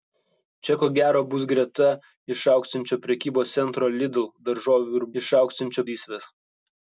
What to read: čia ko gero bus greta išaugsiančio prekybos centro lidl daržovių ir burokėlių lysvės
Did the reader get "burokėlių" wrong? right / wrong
wrong